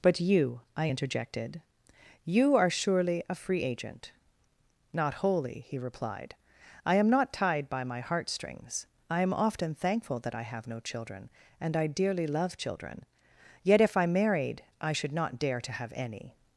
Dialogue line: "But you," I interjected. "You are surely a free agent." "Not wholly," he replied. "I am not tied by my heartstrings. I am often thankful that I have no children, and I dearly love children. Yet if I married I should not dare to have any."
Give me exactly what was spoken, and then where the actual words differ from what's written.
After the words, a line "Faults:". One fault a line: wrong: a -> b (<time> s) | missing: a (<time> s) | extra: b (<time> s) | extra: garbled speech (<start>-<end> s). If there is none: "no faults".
"But you," I interjected. "You are surely a free agent." "Not wholly," he replied. "I am not tied by my heartstrings. I am often thankful that I have no children, and I dearly love children. Yet if I married I should not dare to have any."
Faults:
no faults